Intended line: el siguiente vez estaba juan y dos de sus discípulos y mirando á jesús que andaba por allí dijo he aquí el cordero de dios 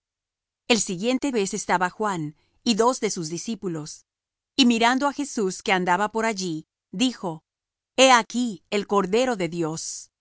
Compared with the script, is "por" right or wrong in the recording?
right